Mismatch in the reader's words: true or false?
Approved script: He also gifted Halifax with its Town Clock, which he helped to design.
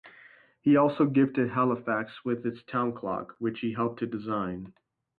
false